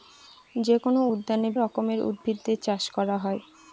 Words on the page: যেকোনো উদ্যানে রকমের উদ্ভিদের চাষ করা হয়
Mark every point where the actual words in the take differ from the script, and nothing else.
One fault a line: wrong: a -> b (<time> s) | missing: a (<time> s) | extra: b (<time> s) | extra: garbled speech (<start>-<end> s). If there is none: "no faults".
no faults